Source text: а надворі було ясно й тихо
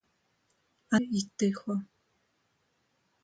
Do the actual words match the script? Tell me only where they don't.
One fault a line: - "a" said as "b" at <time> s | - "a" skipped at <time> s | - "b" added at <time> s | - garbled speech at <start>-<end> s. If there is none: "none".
- "надворі було ясно" skipped at 1.0 s